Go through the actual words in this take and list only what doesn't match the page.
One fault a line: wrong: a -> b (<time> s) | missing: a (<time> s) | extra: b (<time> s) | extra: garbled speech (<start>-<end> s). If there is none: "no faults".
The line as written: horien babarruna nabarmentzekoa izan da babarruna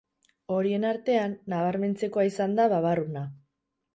wrong: babarruna -> artean (0.9 s)